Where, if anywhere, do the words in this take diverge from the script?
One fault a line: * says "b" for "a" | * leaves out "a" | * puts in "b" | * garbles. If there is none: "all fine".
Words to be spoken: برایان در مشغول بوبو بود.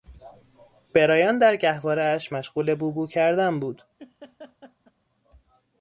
* puts in "گهوارهاش"
* puts in "کردن"